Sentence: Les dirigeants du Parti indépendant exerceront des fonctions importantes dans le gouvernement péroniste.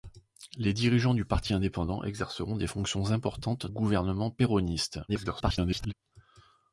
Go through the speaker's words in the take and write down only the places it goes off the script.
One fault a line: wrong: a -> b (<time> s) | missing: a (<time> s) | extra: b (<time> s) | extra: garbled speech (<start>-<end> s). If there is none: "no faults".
missing: dans le (3.7 s)
extra: garbled speech (5.1-5.9 s)